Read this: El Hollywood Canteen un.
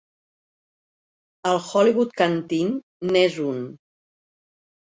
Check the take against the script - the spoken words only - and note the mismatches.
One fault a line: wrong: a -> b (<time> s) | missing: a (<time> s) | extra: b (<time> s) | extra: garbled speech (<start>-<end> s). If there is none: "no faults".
extra: n'és (3.1 s)